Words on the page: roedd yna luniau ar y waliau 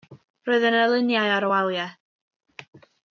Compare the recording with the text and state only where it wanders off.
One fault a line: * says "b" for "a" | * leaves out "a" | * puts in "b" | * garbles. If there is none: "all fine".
all fine